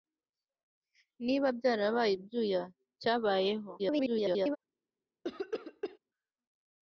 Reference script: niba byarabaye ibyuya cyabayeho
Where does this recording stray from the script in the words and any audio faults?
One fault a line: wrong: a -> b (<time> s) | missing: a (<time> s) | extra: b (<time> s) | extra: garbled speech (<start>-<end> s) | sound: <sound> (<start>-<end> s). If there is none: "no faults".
extra: garbled speech (3.8-4.6 s)
sound: cough (5.2-6.0 s)